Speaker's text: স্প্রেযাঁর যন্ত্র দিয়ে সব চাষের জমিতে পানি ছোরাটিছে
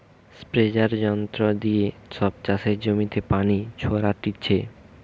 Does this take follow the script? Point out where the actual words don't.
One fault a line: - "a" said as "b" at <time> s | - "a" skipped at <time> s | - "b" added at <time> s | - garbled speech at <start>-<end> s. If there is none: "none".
none